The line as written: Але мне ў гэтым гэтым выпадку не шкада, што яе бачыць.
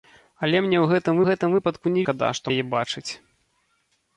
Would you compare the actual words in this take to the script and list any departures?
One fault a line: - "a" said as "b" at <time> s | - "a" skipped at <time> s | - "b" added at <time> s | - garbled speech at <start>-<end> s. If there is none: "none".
none